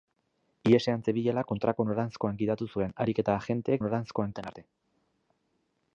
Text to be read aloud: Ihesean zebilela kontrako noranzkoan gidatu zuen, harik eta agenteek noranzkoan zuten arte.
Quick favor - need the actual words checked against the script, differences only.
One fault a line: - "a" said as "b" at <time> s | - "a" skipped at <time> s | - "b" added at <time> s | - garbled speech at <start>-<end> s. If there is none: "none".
none